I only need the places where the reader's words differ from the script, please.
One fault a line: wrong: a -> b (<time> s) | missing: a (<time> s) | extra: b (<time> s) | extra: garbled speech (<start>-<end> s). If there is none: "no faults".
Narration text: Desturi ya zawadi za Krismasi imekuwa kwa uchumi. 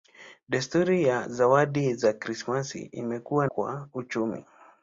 no faults